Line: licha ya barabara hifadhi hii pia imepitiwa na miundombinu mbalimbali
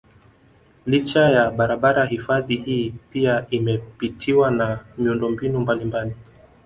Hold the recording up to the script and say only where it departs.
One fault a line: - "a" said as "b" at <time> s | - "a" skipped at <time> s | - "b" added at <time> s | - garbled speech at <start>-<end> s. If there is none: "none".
none